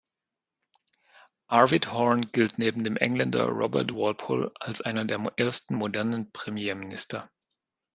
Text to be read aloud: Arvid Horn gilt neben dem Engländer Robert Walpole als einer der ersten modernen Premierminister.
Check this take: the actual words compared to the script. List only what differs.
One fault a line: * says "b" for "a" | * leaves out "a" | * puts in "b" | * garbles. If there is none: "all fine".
all fine